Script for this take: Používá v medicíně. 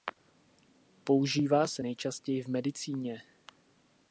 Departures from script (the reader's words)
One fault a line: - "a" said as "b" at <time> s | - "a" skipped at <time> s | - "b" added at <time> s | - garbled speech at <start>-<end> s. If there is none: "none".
- "se nejčastěji" added at 1.7 s